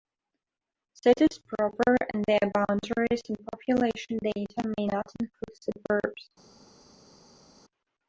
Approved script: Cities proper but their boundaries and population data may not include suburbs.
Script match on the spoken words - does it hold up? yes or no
no